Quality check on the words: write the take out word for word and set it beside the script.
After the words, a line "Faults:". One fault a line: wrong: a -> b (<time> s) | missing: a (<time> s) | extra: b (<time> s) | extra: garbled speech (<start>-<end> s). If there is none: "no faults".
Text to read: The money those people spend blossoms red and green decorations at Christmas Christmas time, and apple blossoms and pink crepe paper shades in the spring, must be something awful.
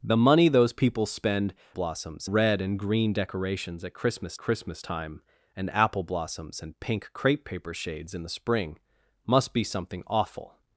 The money those people spend blossoms red and green decorations at Christmas Christmas time, and apple blossoms and pink crepe paper shades in the spring, must be something awful.
Faults:
no faults